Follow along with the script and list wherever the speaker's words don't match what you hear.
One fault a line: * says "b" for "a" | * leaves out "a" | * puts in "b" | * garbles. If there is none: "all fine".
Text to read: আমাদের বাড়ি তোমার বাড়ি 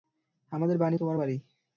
all fine